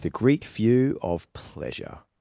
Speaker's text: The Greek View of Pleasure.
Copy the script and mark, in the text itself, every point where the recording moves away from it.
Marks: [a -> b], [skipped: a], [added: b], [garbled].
The Greek View of Pleasure.